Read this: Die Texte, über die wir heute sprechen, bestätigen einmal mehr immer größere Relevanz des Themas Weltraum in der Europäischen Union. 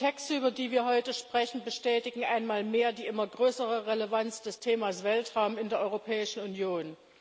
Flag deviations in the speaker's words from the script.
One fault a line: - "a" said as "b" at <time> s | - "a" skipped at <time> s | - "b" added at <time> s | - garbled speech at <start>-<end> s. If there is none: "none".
- "die" added at 2.9 s